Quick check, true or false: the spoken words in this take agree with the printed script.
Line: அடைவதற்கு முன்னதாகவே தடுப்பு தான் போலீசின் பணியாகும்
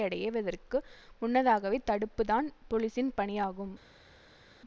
true